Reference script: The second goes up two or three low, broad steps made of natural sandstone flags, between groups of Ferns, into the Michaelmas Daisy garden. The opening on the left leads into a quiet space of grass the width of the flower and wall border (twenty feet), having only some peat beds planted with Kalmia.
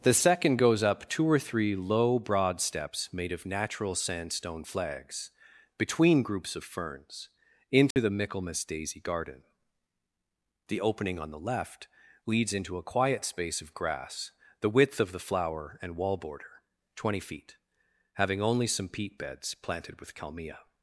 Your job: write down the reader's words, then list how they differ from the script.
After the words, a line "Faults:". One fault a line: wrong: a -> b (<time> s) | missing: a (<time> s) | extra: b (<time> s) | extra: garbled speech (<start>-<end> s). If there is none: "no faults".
The second goes up two or three low, broad steps made of natural sandstone flags, between groups of Ferns, into the Michaelmas Daisy garden. The opening on the left leads into a quiet space of grass the width of the flower and wall border (twenty feet), having only some peat beds planted with Kalmia.
Faults:
no faults